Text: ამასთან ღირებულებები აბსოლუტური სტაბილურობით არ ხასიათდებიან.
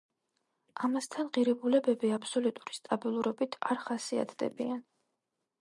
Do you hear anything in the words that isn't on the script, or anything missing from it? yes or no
no